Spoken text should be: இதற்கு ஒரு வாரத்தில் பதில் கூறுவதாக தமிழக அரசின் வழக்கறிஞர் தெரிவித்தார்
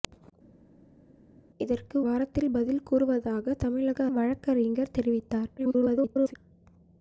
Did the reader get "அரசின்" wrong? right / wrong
wrong